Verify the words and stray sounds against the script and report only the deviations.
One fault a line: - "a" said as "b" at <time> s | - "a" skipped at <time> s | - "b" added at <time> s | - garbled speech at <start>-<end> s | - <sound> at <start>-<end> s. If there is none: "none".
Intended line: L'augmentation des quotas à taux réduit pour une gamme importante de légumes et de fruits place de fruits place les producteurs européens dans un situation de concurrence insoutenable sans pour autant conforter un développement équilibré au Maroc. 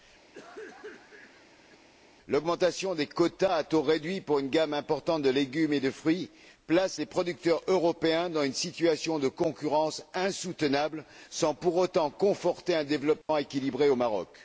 - cough at 0.3-1.9 s
- "de fruits place" skipped at 7.0 s
- "un" said as "une" at 8.4 s
- dropout at 13.2-13.3 s